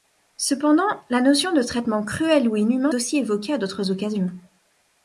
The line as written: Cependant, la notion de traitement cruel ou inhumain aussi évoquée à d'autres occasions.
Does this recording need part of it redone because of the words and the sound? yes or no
no